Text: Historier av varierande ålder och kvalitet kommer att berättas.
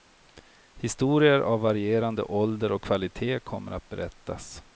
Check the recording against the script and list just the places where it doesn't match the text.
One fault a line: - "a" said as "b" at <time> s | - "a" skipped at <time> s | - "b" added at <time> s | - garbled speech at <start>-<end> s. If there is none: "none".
none